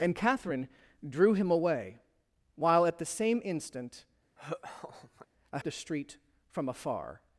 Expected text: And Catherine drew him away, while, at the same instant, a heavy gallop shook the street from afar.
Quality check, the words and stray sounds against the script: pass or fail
fail